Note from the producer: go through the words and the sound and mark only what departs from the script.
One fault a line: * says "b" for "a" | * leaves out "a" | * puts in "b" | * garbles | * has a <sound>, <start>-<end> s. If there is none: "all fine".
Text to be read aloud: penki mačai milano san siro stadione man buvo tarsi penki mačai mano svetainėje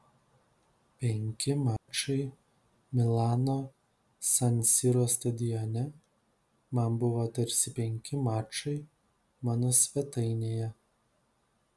* has a dropout, 1.8-1.9 s